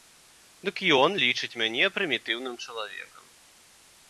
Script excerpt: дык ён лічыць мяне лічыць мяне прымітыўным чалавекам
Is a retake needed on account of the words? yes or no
yes